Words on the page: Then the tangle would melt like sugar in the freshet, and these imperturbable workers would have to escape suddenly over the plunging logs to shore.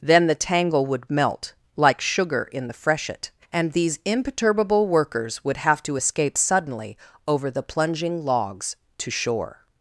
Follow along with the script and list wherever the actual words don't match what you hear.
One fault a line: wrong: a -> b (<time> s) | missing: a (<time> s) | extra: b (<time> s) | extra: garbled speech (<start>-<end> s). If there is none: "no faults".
no faults